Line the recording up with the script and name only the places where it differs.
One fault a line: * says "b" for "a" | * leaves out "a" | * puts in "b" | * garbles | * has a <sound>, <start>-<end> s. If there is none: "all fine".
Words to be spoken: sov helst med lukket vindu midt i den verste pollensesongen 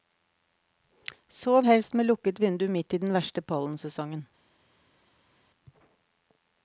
all fine